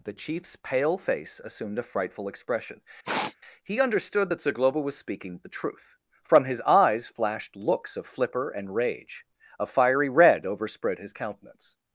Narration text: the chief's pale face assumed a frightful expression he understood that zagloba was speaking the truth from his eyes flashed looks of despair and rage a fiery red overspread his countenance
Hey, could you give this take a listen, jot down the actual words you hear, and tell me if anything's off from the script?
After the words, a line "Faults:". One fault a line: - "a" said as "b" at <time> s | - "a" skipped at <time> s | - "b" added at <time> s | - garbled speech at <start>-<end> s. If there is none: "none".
the chief's pale face assumed a frightful expression he understood that zagloba was speaking the truth from his eyes flashed looks of flipper and rage a fiery red overspread his countenance
Faults:
- "despair" said as "flipper" at 8.1 s